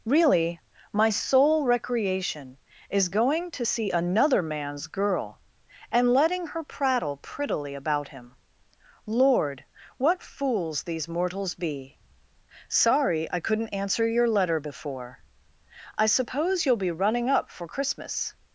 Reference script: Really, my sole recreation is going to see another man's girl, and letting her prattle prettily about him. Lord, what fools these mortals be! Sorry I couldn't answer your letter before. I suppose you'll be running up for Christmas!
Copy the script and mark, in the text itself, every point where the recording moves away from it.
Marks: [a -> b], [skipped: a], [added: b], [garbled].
Really, my sole recreation is going to see another man's girl, and letting her prattle prettily about him. Lord, what fools these mortals be! Sorry I couldn't answer your letter before. I suppose you'll be running up for Christmas!